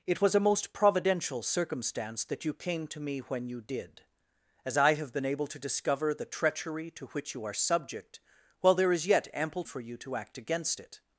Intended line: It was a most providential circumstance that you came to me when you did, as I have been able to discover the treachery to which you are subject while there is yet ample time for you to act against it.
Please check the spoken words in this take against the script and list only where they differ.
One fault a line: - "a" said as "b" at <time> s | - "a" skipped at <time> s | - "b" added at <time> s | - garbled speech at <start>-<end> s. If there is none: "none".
- "time" skipped at 9.6 s